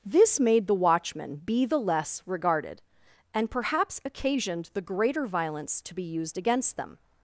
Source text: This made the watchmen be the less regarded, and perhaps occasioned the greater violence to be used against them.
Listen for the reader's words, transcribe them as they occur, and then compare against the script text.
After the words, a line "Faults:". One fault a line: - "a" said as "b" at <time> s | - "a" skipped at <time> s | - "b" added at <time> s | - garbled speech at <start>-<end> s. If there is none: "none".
This made the watchmen be the less regarded, and perhaps occasioned the greater violence to be used against them.
Faults:
none